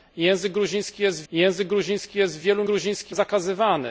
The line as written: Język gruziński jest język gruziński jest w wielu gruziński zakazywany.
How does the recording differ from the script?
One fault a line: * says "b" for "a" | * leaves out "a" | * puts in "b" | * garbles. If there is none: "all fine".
all fine